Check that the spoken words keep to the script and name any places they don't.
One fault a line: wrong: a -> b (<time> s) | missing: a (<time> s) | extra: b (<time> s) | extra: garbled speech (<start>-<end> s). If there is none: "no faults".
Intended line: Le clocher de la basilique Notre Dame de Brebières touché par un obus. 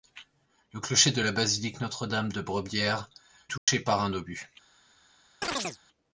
no faults